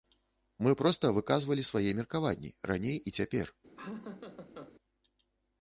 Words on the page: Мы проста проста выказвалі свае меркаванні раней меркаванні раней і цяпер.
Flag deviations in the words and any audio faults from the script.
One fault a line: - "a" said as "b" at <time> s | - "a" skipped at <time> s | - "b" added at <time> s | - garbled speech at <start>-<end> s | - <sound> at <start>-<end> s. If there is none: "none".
- "проста" skipped at 1.1 s
- "меркаванні раней" skipped at 3.0 s
- laugh at 3.8-4.7 s